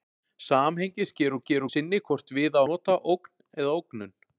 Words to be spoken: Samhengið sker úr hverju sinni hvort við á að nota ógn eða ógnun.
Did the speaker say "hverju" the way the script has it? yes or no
no